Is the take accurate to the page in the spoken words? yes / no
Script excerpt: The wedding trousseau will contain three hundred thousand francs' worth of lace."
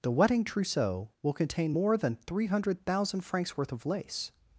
no